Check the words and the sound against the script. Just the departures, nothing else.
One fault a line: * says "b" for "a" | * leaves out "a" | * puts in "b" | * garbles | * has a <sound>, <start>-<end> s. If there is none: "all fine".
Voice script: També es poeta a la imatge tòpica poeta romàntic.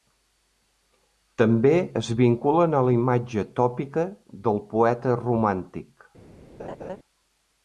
* says "vinculen" for "poeta"
* puts in "del"
* has a laugh, 6.6-7.0 s